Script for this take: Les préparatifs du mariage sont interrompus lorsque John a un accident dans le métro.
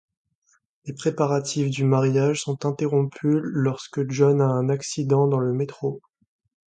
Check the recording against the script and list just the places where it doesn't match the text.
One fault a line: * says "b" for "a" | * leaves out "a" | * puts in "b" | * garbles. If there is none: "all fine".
all fine